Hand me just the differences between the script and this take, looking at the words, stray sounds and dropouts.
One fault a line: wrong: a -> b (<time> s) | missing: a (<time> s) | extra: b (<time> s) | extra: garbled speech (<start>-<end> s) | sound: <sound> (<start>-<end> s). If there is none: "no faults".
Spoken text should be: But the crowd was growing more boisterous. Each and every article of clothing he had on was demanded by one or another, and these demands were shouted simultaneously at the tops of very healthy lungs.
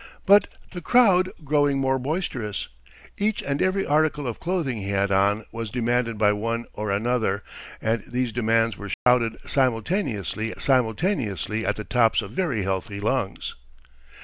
missing: was (1.3 s)
sound: dropout (8.9-9.1 s)
extra: simultaneously (10.6 s)